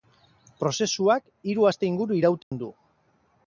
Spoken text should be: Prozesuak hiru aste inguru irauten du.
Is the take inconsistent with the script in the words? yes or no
no